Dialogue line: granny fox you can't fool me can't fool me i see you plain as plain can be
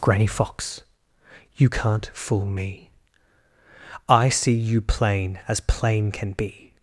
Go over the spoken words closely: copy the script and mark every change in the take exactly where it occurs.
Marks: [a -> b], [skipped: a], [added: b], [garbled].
granny fox you can't fool me [skipped: can't fool me] i see you plain as plain can be